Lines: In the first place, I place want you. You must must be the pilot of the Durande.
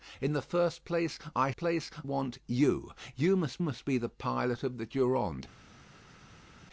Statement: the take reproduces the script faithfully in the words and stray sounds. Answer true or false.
true